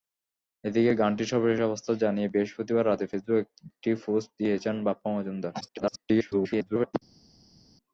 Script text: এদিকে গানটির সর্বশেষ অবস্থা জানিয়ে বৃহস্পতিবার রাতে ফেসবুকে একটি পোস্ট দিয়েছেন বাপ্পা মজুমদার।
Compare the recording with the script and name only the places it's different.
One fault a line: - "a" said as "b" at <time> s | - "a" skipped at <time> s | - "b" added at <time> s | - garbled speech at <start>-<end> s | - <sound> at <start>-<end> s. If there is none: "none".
- garbled speech at 5.6-6.9 s